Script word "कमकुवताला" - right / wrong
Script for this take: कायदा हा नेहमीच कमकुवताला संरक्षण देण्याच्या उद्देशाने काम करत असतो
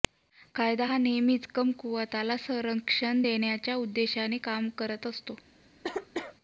right